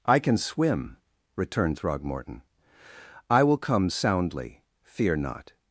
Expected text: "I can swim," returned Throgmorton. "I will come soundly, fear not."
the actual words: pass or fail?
pass